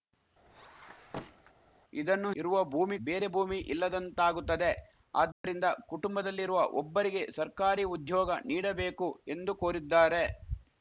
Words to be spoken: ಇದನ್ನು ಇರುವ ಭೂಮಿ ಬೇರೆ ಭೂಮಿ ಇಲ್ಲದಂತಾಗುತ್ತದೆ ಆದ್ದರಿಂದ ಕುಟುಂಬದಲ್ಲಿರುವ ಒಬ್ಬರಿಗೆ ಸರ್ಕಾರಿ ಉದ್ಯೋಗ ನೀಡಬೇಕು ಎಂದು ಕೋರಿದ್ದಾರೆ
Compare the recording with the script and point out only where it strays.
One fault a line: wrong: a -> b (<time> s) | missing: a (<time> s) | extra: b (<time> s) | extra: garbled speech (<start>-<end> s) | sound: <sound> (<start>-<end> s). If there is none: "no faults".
sound: squeak (0.5-1.5 s)
sound: dropout (5.3-5.4 s)